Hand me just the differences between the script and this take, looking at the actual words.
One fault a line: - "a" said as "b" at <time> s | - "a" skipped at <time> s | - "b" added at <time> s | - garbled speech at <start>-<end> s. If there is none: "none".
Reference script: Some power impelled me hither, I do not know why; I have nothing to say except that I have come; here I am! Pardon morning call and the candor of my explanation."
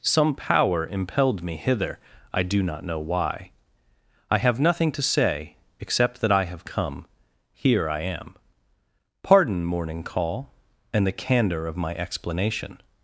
none